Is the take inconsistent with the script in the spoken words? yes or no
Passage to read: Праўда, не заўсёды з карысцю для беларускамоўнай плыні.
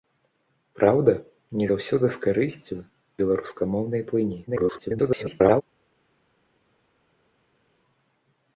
yes